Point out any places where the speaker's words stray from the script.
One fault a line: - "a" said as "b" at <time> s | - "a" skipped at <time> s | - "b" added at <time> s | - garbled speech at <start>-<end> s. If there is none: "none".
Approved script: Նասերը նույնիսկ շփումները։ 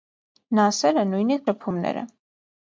none